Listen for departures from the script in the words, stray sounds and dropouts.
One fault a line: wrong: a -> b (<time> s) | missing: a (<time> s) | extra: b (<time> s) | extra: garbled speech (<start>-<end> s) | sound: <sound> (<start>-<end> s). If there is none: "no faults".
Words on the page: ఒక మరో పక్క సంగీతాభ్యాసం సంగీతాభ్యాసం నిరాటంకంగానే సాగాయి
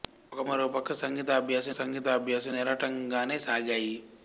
no faults